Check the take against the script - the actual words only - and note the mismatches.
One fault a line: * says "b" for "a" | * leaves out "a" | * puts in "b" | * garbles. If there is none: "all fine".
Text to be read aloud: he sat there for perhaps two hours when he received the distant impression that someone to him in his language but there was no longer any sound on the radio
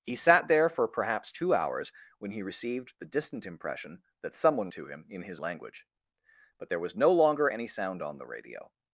all fine